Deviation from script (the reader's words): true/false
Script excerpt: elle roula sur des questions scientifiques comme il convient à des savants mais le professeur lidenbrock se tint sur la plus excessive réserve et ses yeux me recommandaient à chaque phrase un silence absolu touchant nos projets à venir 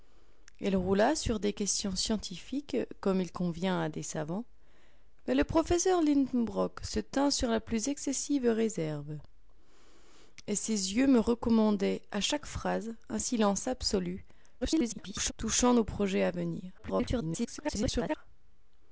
true